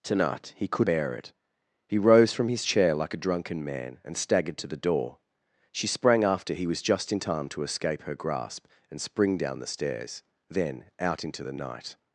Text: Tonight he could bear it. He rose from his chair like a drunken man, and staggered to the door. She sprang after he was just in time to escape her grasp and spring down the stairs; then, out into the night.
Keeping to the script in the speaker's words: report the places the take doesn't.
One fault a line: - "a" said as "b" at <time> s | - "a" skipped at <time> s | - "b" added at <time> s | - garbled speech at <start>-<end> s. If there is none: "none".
none